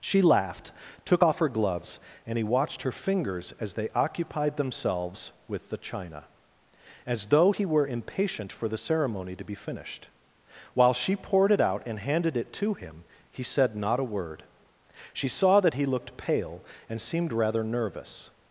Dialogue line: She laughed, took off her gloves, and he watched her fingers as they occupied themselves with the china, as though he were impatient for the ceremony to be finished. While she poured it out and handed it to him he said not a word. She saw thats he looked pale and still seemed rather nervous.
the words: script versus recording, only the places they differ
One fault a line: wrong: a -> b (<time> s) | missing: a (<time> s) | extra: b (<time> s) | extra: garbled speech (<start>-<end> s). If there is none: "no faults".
wrong: thats -> that (15.6 s)
missing: still (17.0 s)